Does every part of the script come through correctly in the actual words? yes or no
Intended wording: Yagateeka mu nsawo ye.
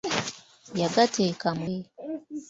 no